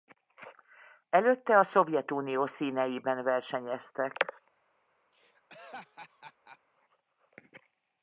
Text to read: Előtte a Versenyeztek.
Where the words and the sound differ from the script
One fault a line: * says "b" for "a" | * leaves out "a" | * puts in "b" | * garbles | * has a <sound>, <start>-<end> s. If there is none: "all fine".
* puts in "Szovjetunió színeiben"
* has a laugh, 5.1-6.6 s